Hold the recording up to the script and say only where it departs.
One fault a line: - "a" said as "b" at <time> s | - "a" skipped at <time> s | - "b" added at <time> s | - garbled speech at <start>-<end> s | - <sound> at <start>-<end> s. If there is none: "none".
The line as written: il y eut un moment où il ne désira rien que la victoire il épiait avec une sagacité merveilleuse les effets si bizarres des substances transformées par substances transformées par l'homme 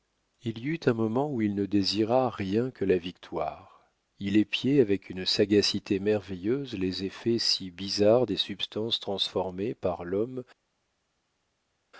- "substances transformées par" skipped at 10.0 s